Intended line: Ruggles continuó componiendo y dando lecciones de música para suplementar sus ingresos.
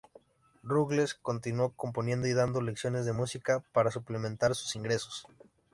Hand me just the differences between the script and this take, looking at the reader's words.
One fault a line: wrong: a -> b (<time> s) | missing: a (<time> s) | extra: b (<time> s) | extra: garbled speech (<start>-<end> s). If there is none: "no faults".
no faults